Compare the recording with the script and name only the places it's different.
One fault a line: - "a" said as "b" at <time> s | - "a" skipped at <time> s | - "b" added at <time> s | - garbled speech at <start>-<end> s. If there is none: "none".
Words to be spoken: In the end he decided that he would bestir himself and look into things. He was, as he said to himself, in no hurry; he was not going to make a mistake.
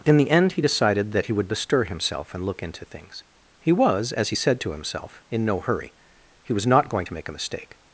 none